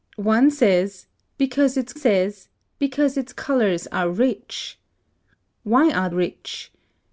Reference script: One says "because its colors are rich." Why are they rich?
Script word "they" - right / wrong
wrong